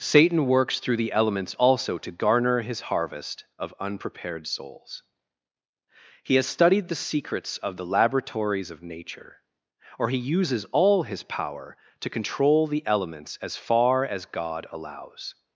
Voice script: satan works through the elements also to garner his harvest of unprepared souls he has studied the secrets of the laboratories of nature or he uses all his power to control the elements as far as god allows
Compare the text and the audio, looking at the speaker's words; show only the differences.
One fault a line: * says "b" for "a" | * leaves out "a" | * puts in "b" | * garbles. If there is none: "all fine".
all fine